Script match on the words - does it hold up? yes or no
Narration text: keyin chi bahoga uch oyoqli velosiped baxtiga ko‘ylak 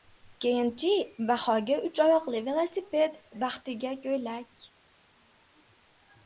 yes